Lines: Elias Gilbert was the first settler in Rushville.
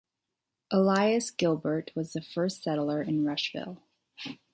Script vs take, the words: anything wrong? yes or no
no